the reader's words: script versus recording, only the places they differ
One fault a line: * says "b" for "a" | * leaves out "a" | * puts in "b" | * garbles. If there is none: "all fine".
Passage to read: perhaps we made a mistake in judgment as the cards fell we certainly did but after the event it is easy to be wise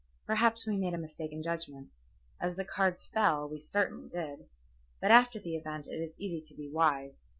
all fine